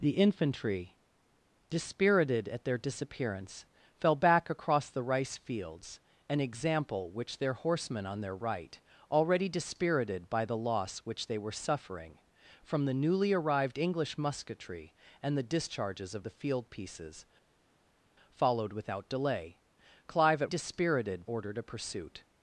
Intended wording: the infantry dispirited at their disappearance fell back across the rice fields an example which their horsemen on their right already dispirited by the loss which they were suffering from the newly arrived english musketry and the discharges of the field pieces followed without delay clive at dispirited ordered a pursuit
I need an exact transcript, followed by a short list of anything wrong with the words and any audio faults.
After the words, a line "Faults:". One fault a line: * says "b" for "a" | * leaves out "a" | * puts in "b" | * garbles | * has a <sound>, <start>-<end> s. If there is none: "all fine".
the infantry dispirited at their disappearance fell back across the rice fields an example which their horsemen on their right already dispirited by the loss which they were suffering from the newly arrived english musketry and the discharges of the field pieces followed without delay clive at dispirited ordered a pursuit
Faults:
all fine